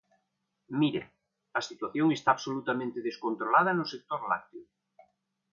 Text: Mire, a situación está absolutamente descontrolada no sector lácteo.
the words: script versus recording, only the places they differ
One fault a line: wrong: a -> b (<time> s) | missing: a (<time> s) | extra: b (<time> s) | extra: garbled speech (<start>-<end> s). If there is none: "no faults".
no faults